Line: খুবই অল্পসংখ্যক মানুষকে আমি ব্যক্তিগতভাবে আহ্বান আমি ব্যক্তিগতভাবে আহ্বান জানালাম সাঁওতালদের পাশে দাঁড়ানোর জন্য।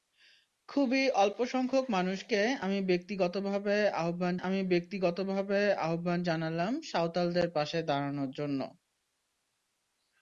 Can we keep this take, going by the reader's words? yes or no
yes